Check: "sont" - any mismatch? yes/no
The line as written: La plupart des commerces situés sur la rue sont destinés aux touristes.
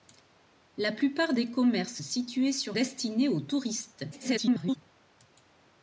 yes